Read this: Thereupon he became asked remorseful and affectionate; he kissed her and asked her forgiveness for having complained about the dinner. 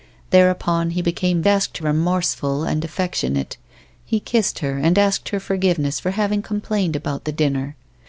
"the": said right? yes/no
yes